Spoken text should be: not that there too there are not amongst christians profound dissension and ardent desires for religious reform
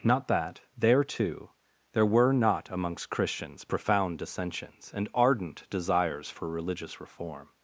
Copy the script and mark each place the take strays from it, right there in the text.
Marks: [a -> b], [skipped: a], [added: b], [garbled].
not that there too there [are -> were] not amongst christians profound [dissension -> dissensions] and ardent desires for religious reform